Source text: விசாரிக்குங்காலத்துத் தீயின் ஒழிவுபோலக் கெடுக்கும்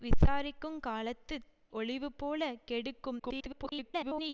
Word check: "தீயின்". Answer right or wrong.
wrong